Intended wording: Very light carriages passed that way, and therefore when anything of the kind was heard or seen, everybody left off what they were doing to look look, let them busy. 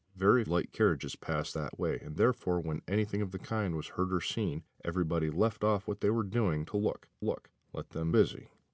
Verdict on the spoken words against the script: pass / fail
pass